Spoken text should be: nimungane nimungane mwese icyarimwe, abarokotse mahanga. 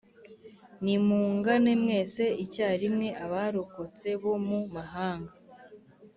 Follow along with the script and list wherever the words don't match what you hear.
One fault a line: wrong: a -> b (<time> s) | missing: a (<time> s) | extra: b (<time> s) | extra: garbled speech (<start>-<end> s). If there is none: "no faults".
missing: nimungane (1.7 s)
extra: bo mu (4.2 s)